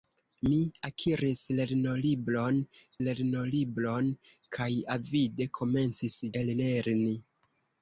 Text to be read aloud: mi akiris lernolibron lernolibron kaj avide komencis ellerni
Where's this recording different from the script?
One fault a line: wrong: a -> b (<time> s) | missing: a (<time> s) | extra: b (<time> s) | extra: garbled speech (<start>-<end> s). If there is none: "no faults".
no faults